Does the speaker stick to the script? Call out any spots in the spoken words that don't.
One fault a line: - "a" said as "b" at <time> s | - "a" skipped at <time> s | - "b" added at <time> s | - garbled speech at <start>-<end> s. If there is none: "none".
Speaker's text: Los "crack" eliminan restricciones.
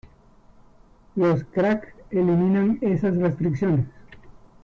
- "esas" added at 2.8 s